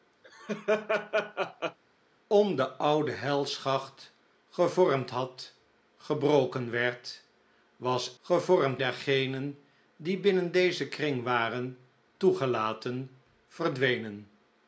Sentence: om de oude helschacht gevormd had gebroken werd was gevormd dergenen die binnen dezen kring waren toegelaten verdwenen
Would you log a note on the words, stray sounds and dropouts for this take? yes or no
yes